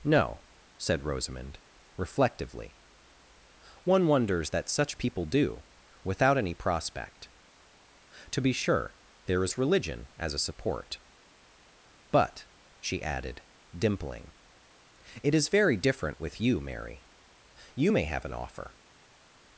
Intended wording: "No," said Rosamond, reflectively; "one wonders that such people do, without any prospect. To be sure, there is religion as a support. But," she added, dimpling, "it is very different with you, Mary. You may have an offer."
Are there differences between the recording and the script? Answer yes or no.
no